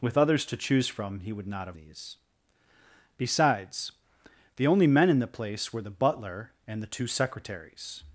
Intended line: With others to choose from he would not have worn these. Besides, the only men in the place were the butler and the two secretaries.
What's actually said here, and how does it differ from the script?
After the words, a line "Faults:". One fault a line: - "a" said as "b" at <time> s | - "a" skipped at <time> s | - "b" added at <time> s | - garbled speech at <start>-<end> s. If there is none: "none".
With others to choose from he would not have these. Besides, the only men in the place were the butler and the two secretaries.
Faults:
- "worn" skipped at 1.8 s